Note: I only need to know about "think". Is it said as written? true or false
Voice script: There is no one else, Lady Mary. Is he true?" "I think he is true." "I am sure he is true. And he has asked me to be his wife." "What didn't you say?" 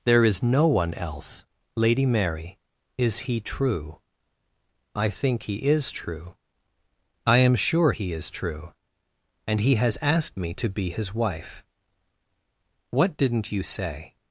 true